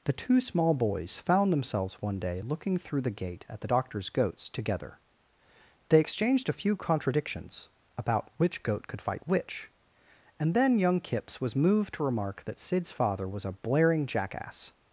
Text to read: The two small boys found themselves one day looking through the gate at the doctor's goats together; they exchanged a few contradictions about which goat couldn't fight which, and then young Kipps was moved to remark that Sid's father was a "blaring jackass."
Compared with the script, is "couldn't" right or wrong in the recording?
wrong